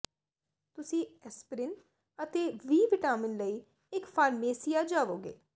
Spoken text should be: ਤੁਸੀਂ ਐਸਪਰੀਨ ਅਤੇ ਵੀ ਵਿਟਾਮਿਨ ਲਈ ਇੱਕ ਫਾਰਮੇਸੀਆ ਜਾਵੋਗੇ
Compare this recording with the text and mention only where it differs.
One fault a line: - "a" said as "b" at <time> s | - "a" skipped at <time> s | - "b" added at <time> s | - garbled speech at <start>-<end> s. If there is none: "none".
none